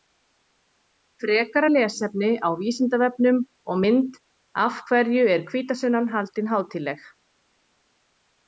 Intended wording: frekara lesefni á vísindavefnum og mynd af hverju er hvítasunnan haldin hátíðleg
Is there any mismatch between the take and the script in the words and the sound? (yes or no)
no